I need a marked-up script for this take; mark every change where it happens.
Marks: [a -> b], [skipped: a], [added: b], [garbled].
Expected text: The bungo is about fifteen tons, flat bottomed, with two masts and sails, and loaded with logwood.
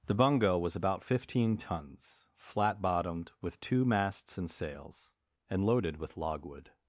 The bungo [is -> was] about fifteen tons, flat bottomed, with two masts and sails, and loaded with logwood.